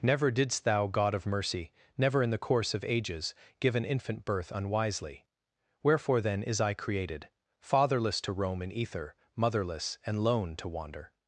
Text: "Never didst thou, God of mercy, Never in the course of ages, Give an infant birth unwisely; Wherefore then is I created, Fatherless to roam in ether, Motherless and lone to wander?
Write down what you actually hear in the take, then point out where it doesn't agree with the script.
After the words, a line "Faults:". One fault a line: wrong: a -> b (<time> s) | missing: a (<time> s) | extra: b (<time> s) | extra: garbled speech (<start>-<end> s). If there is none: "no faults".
"Never didst thou, God of mercy, Never in the course of ages, Give an infant birth unwisely; Wherefore then is I created, Fatherless to roam in ether, Motherless and lone to wander?
Faults:
no faults